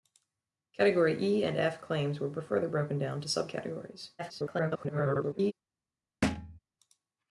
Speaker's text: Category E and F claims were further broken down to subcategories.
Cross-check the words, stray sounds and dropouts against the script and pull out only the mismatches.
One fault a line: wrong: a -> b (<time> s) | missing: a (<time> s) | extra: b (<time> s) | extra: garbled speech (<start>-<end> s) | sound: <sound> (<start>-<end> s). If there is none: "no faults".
extra: garbled speech (4.2-5.5 s)
sound: thud (6.2-6.6 s)